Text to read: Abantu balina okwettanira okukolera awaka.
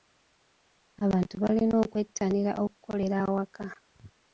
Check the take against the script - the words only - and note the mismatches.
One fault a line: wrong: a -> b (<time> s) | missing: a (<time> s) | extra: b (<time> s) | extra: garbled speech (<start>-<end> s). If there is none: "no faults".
no faults